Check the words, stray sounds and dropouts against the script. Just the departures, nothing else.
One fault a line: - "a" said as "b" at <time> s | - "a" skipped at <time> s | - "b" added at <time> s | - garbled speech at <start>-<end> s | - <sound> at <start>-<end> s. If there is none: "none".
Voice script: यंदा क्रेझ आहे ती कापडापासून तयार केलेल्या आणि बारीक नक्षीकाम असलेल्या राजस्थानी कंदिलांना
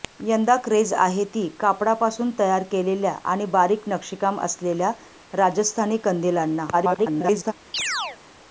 - garbled speech at 6.7-7.5 s
- chirp at 7.7-8.2 s